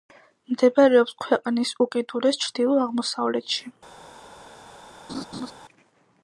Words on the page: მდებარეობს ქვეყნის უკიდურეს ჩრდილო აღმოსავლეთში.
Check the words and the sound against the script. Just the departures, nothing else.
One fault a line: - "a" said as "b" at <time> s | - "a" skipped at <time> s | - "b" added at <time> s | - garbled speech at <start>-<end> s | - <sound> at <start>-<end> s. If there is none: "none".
- laugh at 5.1-5.5 s